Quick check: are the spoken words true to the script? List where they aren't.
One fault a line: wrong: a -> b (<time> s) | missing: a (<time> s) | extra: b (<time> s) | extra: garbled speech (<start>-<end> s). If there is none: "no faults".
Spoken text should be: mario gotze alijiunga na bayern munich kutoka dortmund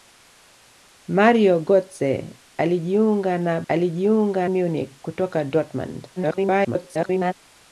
wrong: bayern -> alijiunga (3.7 s)
extra: garbled speech (6.2-7.3 s)